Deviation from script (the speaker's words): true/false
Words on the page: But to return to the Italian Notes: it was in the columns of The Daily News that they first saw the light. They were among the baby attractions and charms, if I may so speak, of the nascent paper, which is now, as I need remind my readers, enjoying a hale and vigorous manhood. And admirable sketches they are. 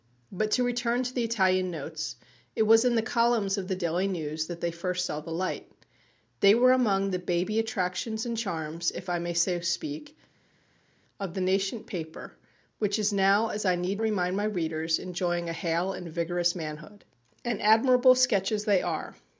false